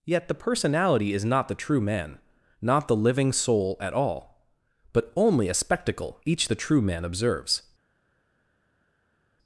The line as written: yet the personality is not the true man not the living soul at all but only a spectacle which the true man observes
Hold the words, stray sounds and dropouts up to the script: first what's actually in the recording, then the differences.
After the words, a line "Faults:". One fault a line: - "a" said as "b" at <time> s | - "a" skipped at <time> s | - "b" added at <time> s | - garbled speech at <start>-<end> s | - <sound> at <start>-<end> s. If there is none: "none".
yet the personality is not the true man not the living soul at all but only a spectacle each the true man observes
Faults:
- "which" said as "each" at 6.2 s